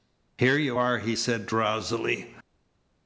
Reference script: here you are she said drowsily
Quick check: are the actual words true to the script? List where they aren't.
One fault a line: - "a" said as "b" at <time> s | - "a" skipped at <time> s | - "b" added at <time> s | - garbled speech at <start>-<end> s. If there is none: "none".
- "she" said as "he" at 1.0 s